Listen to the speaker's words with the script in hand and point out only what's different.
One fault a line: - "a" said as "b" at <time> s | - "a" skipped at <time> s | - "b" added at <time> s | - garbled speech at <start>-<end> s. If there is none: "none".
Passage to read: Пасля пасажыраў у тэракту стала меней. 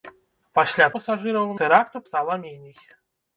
none